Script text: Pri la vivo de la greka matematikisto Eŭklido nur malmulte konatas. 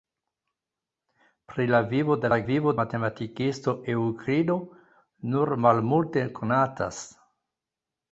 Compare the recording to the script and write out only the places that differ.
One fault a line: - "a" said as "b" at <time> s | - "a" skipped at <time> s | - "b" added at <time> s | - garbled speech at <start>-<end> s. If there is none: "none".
- "greka" said as "vivo" at 2.5 s